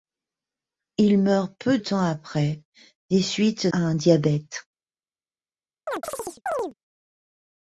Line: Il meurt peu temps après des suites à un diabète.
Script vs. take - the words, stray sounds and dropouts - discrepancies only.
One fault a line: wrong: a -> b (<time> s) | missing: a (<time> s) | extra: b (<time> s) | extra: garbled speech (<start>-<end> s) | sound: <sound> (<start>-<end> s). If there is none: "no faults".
sound: chirp (5.9-6.7 s)